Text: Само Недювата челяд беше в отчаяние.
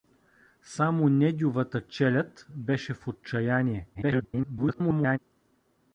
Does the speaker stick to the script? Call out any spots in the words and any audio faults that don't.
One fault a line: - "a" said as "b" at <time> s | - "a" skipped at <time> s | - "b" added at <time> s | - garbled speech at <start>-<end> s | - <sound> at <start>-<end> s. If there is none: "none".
- garbled speech at 3.9-5.2 s